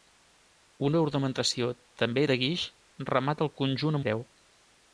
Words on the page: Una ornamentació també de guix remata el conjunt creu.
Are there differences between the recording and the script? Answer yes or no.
no